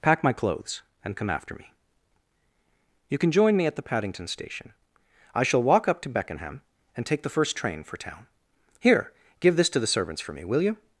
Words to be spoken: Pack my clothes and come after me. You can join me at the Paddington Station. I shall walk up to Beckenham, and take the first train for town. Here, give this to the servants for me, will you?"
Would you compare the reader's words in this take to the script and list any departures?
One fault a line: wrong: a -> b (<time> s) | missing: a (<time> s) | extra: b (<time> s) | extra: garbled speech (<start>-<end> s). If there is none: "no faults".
no faults